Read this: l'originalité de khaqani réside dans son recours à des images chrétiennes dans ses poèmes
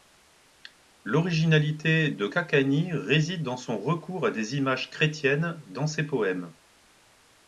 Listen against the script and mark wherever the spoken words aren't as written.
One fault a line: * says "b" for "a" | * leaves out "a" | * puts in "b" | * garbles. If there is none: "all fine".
all fine